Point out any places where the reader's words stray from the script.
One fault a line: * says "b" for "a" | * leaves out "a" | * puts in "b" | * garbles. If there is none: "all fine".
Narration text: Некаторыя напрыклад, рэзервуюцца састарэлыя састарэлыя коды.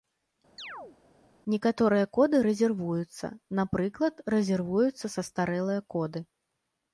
* puts in "коды рэзервуюцца"
* leaves out "састарэлыя"